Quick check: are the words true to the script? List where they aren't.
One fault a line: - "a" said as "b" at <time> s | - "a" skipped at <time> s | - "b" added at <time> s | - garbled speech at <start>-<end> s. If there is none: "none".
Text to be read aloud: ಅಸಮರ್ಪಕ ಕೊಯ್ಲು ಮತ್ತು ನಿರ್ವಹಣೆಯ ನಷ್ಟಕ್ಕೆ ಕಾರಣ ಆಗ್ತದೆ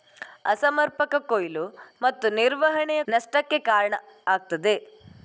none